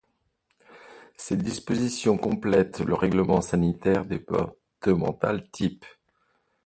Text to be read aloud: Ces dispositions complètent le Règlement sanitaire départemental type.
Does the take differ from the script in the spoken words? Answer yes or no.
no